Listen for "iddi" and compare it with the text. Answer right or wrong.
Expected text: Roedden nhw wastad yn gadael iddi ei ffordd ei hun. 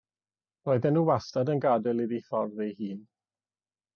right